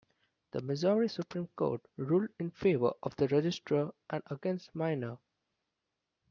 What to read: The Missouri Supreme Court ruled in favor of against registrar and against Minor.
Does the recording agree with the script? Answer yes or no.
no